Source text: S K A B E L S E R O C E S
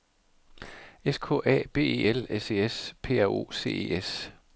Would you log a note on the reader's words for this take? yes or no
yes